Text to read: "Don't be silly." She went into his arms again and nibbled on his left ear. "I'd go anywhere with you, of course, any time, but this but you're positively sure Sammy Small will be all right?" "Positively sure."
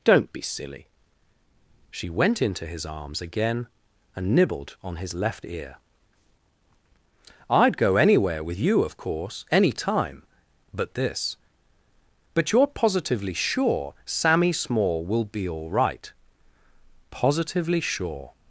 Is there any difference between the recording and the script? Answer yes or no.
no